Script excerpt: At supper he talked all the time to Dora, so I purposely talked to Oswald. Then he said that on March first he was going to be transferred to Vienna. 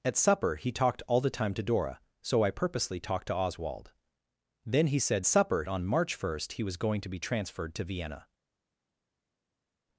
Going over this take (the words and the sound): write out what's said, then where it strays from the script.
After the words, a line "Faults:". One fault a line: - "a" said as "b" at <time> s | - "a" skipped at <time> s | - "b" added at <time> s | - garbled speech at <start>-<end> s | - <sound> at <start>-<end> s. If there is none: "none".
At supper he talked all the time to Dora, so I purposely talked to Oswald. Then he said supper on March first he was going to be transferred to Vienna.
Faults:
- "that" said as "supper" at 5.3 s